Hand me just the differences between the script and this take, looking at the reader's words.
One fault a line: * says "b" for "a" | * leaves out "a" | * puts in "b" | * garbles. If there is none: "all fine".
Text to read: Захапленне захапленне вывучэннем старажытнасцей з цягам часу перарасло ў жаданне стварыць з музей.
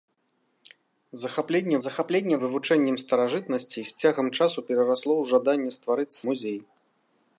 all fine